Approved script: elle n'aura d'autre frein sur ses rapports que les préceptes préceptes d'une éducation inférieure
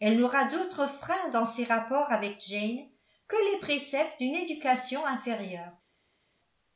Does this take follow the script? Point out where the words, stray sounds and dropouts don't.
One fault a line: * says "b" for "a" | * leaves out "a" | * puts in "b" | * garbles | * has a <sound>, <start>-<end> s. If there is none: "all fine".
* says "dans" for "sur"
* puts in "avec jane"
* leaves out "préceptes"